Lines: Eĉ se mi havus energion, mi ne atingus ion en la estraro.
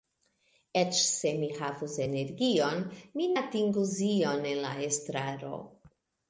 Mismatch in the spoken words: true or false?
true